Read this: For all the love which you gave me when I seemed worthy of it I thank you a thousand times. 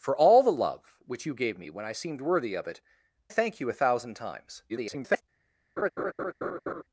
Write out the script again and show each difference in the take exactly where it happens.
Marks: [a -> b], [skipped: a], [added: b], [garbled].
For all the love which you gave me when I seemed worthy of it [skipped: I] thank you a thousand times. [garbled]